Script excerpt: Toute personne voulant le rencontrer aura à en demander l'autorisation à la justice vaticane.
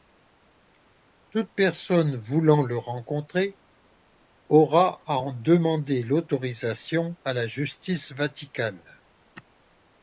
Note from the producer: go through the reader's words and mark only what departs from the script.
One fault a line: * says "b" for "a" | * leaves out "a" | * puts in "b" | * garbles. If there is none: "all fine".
all fine